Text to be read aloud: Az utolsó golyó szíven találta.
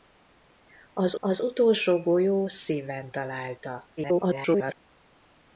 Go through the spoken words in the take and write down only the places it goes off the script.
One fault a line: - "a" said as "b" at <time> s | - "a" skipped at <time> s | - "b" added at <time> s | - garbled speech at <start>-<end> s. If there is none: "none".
- "az" added at 1.2 s
- garbled speech at 4.0-4.8 s